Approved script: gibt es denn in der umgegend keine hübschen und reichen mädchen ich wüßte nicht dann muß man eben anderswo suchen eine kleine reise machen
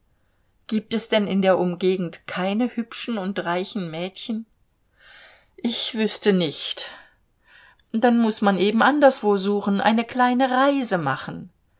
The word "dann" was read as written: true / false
true